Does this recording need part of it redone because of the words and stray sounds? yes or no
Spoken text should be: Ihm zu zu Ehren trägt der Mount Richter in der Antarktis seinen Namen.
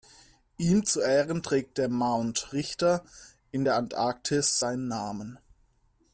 yes